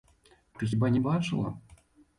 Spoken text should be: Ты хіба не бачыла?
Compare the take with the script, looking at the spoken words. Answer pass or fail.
pass